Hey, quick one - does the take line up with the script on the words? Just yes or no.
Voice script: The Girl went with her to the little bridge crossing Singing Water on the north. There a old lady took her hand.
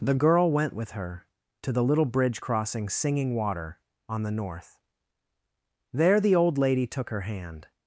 no